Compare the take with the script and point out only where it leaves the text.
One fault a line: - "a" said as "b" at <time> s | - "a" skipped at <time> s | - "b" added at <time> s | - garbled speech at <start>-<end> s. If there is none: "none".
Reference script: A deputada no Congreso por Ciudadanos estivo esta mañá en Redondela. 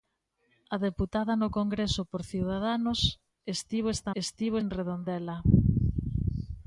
- "mañá" said as "estivo" at 4.2 s